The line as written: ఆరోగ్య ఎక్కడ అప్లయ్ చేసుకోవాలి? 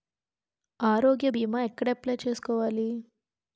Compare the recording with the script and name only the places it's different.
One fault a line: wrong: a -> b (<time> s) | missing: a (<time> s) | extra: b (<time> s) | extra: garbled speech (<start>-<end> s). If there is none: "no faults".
extra: భీమా (1.3 s)